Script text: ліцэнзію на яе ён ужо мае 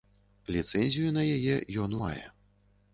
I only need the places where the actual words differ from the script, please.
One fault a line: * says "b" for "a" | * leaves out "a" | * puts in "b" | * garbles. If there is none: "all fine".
* leaves out "ужо"